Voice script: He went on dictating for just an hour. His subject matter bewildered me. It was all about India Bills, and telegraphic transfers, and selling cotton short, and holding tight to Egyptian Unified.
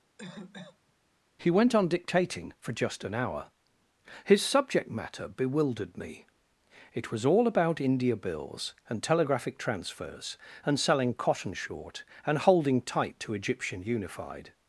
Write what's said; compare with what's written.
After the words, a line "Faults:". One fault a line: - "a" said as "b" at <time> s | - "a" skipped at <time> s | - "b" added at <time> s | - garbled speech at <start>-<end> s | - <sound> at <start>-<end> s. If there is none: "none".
He went on dictating for just an hour. His subject matter bewildered me. It was all about India Bills, and telegraphic transfers, and selling cotton short, and holding tight to Egyptian Unified.
Faults:
- cough at 0.2-0.9 s